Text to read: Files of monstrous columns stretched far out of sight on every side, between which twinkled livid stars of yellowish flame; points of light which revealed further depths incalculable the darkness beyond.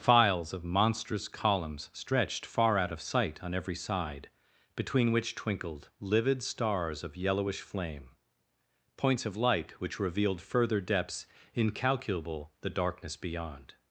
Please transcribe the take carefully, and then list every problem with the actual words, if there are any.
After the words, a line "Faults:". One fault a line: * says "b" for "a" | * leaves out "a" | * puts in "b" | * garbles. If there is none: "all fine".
Files of monstrous columns stretched far out of sight on every side, between which twinkled livid stars of yellowish flame; points of light which revealed further depths incalculable the darkness beyond.
Faults:
all fine